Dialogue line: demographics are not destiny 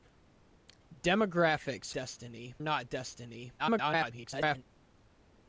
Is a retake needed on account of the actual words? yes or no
yes